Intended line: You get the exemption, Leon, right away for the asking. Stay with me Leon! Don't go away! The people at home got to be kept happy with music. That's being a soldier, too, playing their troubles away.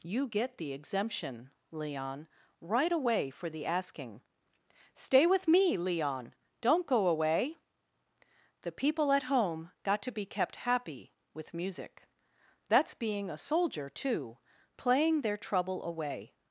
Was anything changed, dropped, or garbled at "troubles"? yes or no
yes